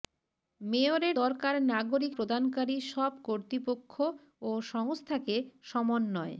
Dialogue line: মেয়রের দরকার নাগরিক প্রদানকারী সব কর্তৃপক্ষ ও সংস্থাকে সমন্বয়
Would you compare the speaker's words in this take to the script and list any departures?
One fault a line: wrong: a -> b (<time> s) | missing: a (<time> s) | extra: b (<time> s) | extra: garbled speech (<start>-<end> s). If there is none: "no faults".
no faults